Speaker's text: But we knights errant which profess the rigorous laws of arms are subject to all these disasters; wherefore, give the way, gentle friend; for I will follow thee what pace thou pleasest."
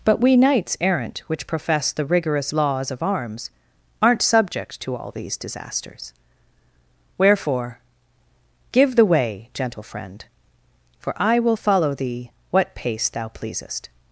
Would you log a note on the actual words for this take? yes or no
yes